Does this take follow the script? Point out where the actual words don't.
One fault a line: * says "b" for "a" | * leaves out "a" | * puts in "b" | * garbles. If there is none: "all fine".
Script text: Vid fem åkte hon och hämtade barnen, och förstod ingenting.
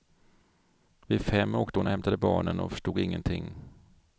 all fine